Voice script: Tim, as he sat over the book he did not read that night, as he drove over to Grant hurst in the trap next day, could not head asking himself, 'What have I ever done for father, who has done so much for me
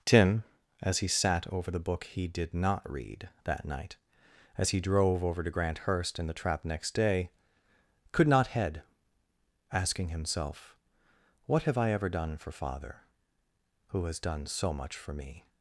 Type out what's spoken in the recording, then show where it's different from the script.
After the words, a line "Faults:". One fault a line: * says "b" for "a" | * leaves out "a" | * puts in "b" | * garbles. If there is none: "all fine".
Tim, as he sat over the book he did not read that night, as he drove over to Grant hurst in the trap next day, could not head asking himself, 'What have I ever done for father, who has done so much for me
Faults:
all fine